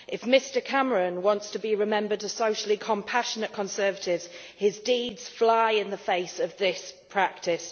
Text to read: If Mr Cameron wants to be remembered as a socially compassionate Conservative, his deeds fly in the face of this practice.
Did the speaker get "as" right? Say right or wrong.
wrong